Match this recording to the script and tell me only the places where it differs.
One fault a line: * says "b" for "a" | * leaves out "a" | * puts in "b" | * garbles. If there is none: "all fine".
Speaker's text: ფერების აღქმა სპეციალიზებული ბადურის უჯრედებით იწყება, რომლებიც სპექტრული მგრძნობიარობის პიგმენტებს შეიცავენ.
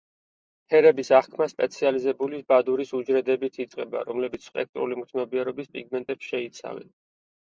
all fine